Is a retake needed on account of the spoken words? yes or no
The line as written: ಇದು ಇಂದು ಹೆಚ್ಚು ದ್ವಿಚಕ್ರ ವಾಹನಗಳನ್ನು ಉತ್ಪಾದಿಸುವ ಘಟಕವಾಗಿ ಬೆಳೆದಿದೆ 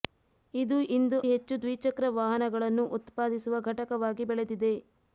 no